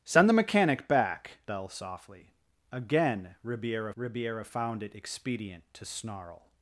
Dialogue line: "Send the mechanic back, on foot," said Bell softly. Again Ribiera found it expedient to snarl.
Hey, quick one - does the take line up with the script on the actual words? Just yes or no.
no